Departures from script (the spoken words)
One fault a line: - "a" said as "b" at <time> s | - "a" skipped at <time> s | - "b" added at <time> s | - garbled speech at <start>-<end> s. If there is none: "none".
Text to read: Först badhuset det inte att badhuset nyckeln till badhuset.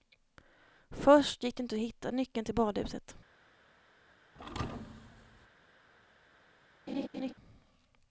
- "badhuset" said as "gick" at 1.4 s
- "badhuset" said as "hitta" at 1.8 s